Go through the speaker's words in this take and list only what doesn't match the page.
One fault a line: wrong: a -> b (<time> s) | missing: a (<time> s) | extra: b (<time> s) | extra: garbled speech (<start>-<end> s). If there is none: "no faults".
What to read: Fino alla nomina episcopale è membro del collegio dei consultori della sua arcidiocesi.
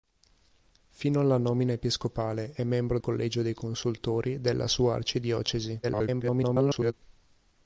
missing: del (3.0 s)
extra: garbled speech (5.8-6.9 s)